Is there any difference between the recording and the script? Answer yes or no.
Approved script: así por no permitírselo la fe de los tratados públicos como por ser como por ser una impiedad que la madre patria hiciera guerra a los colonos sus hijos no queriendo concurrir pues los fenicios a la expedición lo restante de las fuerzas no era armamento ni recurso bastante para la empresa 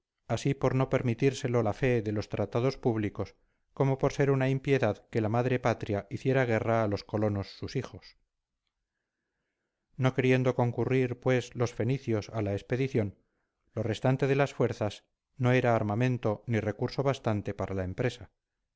yes